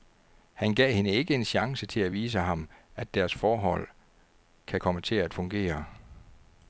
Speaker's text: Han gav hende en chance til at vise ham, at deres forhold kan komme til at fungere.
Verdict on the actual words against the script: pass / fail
fail